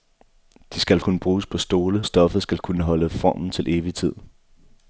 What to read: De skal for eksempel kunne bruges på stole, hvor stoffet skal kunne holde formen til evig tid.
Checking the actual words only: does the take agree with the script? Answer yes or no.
no